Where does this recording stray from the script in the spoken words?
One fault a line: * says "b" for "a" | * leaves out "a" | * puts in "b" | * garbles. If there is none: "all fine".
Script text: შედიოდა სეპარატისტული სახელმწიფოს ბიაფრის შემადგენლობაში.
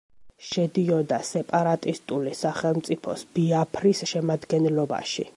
all fine